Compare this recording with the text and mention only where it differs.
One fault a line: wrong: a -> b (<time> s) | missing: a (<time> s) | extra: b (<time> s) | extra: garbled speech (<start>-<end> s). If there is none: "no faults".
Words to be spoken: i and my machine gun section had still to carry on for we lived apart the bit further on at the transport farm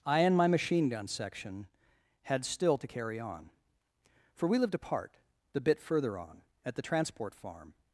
no faults